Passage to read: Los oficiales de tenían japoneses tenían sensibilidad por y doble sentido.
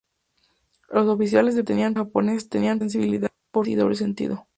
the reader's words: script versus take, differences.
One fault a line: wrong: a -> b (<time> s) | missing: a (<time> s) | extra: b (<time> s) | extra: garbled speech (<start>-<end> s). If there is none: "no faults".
no faults